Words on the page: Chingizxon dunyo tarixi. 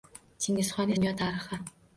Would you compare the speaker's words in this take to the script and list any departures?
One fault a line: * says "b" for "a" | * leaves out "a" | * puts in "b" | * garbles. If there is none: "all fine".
all fine